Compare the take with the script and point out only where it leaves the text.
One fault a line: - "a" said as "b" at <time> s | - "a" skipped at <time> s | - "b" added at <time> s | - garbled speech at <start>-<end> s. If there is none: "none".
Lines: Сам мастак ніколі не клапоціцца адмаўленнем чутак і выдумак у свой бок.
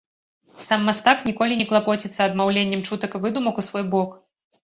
none